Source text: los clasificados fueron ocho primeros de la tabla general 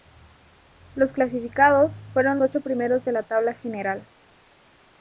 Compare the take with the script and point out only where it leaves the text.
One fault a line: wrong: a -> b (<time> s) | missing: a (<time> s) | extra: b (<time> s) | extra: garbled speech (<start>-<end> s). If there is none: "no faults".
no faults